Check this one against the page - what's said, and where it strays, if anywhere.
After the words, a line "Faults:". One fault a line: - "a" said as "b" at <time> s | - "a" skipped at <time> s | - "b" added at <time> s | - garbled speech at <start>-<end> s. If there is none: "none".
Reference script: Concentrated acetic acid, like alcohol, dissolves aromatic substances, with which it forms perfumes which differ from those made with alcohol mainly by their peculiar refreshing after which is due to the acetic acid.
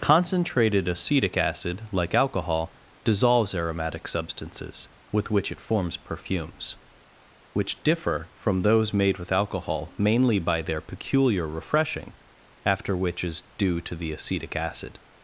Concentrated acetic acid, like alcohol, dissolves aromatic substances, with which it forms perfumes which differ from those made with alcohol mainly by their peculiar refreshing after which is due to the acetic acid.
Faults:
none